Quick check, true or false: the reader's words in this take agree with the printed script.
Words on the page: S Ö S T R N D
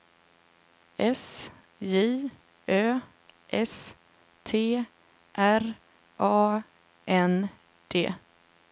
false